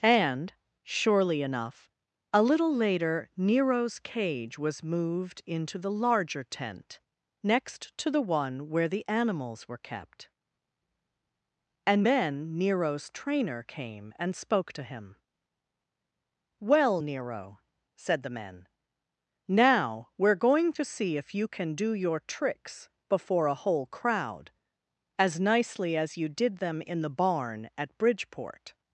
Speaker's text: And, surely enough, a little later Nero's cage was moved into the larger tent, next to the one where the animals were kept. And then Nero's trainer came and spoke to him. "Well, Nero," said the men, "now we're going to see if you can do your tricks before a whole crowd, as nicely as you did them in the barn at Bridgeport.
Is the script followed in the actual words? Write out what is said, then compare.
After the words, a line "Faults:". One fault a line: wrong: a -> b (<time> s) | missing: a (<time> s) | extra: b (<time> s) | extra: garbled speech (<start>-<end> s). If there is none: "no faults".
And, surely enough, a little later Nero's cage was moved into the larger tent, next to the one where the animals were kept. And then Nero's trainer came and spoke to him. "Well, Nero," said the men, "now we're going to see if you can do your tricks before a whole crowd, as nicely as you did them in the barn at Bridgeport.
Faults:
no faults